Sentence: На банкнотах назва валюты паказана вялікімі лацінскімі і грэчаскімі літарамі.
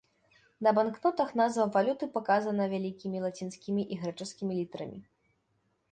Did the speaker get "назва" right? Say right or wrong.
right